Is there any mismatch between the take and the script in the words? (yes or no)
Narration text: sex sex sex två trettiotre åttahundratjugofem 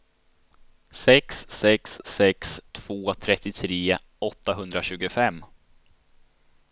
no